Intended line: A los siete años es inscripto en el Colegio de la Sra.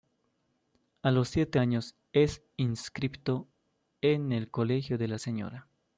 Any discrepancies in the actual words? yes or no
no